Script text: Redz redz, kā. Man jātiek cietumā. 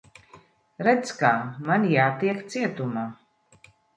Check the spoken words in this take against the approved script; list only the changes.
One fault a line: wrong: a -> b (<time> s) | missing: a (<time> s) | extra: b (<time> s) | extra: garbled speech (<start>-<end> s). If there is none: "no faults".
missing: redz (1.1 s)